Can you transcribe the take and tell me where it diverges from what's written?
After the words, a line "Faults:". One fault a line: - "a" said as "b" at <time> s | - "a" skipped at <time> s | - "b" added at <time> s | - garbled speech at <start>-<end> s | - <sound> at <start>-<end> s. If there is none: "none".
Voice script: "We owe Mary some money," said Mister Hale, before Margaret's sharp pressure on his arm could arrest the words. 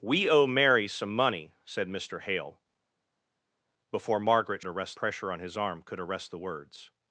"We owe Mary some money," said Mister Hale, before Margaret's arrest pressure on his arm could arrest the words.
Faults:
- "sharp" said as "arrest" at 4.7 s